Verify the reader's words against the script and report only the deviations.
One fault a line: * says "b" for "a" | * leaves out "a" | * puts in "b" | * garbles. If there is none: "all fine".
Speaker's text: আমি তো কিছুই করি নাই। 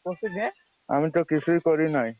all fine